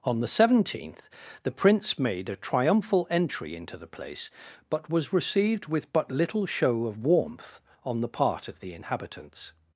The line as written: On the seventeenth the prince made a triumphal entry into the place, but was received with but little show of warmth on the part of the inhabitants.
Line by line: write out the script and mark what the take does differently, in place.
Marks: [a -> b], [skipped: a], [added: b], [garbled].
On the seventeenth the prince made a triumphal entry into the place, but was received with but little show of warmth on the part of the inhabitants.